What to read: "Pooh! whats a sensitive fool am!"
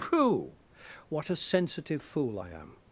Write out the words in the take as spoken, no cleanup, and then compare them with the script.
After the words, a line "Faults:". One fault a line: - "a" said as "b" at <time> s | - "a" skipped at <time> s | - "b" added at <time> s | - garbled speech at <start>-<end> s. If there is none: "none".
"Pooh! what a sensitive fool I am!"
Faults:
- "whats" said as "what" at 1.1 s
- "I" added at 2.4 s